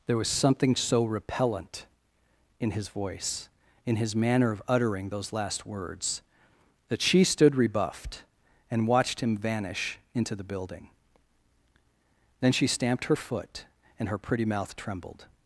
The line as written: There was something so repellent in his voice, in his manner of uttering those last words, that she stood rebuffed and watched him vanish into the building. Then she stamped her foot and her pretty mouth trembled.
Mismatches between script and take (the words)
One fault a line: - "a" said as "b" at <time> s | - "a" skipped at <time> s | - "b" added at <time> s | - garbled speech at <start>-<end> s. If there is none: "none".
none